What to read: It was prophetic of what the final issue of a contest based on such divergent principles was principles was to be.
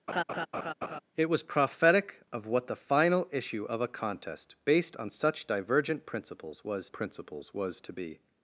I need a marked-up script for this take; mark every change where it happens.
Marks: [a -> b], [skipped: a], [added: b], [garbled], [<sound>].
[laugh] It was prophetic of what the final issue of a contest based on such divergent principles was principles was to be.